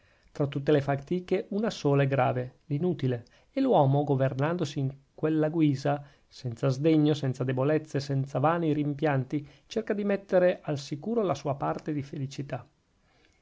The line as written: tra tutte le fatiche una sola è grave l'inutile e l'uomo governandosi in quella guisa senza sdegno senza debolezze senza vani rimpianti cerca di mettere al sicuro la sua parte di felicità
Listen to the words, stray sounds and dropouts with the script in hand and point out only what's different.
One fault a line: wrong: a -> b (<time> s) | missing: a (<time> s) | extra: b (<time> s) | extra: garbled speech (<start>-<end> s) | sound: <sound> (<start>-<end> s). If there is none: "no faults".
no faults